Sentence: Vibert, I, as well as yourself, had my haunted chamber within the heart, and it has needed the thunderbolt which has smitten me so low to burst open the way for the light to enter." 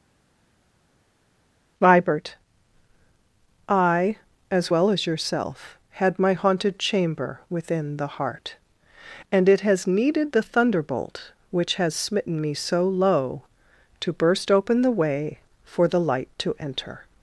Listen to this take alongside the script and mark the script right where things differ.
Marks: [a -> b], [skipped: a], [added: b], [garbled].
Vibert, I, as well as yourself, had my haunted chamber within the heart, and it has needed the thunderbolt which has smitten me so low to burst open the way for the light to enter."